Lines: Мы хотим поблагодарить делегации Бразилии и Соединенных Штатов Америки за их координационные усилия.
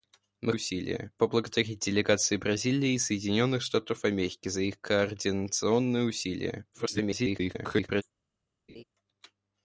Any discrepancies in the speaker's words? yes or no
yes